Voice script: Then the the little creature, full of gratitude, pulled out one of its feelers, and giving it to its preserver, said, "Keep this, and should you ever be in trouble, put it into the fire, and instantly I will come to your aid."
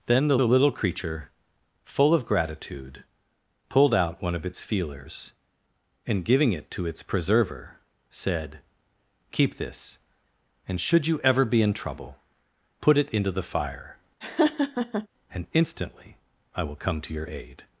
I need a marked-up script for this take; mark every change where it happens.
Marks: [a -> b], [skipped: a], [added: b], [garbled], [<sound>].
Then the the little creature, full of gratitude, pulled out one of its feelers, and giving it to its preserver, said, "Keep this, and should you ever be in trouble, put it into the fire, [laugh] and instantly I will come to your aid."